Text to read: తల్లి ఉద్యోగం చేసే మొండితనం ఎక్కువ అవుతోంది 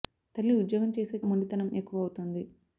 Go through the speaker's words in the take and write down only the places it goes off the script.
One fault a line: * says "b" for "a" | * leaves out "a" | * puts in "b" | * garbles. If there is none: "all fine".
all fine